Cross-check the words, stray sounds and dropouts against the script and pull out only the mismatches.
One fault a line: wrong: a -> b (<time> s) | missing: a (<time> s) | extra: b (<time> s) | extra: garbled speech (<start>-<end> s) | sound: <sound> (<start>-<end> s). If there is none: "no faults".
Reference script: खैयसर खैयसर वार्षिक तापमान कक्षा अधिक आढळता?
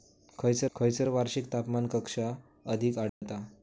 sound: dropout (3.1-3.2 s)